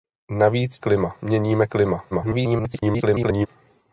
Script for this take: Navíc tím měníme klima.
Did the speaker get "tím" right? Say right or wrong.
wrong